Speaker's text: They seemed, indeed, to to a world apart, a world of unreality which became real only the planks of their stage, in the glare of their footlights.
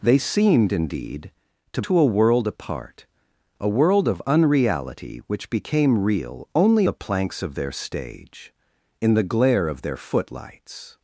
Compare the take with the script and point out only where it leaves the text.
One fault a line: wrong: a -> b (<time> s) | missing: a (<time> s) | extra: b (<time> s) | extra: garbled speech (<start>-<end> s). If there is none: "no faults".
no faults